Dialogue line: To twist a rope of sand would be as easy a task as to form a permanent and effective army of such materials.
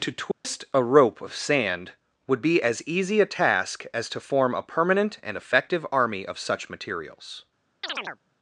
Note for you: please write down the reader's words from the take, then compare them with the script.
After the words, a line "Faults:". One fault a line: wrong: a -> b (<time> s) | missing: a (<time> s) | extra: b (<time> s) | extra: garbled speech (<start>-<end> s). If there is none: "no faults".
To twist a rope of sand would be as easy a task as to form a permanent and effective army of such materials.
Faults:
no faults